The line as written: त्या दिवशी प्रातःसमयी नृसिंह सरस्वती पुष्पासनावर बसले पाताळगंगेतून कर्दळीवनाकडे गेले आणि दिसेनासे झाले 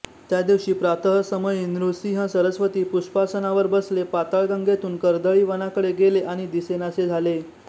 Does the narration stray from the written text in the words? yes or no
no